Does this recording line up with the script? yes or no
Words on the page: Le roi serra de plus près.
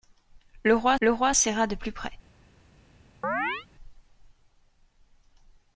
no